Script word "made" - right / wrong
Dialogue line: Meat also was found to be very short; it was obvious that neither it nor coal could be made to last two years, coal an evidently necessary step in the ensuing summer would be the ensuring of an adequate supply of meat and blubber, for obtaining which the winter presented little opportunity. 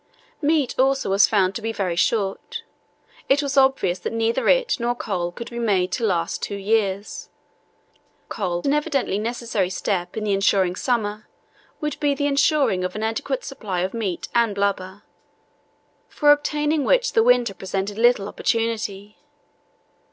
right